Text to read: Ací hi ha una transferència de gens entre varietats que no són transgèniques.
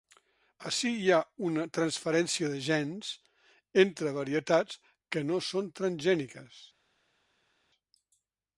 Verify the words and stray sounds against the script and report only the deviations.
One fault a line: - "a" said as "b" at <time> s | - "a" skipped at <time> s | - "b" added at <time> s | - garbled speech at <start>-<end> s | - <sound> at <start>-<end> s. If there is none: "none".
none